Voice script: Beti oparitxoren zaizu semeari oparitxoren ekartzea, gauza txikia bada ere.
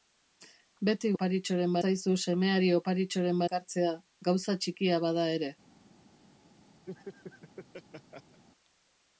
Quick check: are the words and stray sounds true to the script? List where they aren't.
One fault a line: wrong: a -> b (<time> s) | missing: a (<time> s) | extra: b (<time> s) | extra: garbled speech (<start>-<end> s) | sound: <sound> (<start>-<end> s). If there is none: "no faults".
sound: laugh (6.9-8.4 s)